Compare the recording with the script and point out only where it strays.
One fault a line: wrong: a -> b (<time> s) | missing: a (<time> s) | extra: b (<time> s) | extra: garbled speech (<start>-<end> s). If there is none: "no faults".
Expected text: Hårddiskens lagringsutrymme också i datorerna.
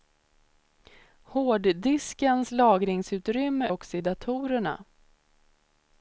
no faults